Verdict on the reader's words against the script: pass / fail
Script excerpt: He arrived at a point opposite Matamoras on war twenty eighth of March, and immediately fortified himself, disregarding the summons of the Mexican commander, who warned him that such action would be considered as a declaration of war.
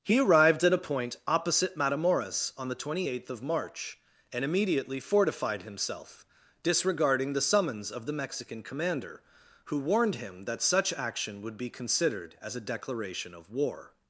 fail